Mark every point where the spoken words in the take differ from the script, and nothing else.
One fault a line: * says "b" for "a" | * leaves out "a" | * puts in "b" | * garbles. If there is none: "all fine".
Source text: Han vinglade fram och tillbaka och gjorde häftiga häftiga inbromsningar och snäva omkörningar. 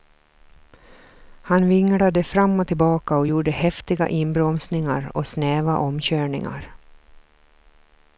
* leaves out "häftiga"